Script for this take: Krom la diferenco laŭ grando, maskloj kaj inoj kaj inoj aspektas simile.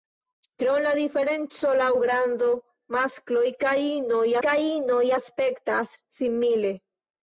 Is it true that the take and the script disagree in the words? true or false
false